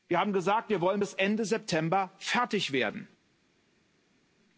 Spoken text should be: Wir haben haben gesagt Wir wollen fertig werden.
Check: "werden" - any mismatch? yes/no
no